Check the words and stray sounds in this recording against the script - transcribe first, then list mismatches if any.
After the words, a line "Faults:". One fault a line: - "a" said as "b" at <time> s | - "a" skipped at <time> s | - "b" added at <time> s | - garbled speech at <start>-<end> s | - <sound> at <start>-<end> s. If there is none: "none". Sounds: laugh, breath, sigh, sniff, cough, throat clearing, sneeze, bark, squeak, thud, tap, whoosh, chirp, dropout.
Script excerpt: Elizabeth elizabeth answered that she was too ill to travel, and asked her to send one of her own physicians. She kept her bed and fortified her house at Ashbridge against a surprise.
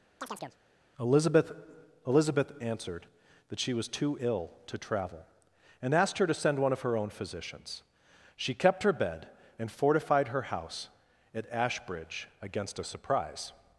Elizabeth elizabeth answered that she was too ill to travel, and asked her to send one of her own physicians. She kept her bed and fortified her house at Ashbridge against a surprise.
Faults:
- chirp at 0.2-0.6 s